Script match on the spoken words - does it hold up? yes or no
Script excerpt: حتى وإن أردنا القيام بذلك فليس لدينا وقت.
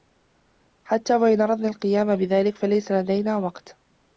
yes